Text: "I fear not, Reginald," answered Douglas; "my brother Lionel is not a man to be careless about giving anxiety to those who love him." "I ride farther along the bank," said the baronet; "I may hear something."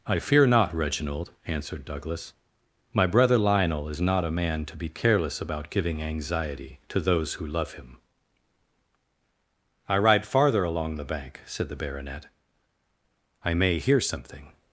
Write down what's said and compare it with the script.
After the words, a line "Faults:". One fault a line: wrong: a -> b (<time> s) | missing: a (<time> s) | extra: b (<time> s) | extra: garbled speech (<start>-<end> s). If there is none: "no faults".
"I fear not, Reginald," answered Douglas; "my brother Lionel is not a man to be careless about giving anxiety to those who love him." "I ride farther along the bank," said the baronet; "I may hear something."
Faults:
no faults